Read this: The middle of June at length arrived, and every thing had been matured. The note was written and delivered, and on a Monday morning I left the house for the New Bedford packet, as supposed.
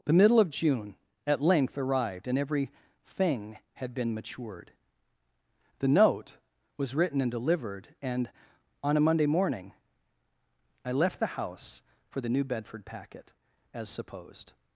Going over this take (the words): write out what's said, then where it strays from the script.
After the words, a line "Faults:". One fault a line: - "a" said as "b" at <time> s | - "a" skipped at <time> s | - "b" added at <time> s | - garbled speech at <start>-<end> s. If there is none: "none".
The middle of June at length arrived, and every thing had been matured. The note was written and delivered, and on a Monday morning I left the house for the New Bedford packet, as supposed.
Faults:
none